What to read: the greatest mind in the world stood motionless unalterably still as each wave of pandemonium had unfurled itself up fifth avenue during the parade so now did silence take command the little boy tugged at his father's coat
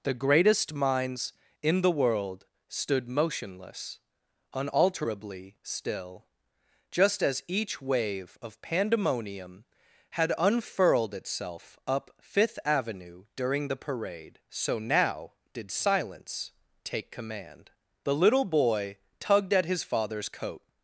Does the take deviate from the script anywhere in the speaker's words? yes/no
yes